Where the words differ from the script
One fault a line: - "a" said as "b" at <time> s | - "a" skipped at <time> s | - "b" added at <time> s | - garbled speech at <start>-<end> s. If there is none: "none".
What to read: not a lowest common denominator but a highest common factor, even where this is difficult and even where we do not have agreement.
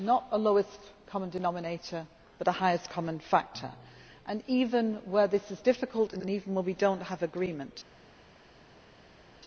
- "and" added at 6.2 s